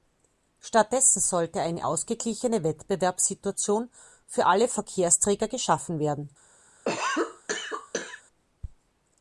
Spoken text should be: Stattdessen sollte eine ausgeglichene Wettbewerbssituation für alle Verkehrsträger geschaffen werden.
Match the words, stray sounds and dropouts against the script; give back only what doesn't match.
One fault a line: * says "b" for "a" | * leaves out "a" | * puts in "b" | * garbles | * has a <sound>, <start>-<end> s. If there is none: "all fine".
* has a cough, 6.8-8.2 s